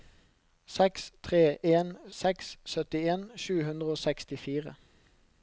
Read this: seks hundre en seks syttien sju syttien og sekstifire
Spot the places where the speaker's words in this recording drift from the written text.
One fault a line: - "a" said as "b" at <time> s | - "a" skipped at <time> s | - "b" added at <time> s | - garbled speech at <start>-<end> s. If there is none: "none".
- "hundre" said as "tre" at 1.3 s
- "syttien" said as "hundre" at 3.7 s